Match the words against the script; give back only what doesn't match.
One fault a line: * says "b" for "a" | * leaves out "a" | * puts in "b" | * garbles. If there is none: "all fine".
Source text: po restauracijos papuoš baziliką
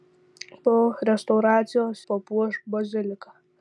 all fine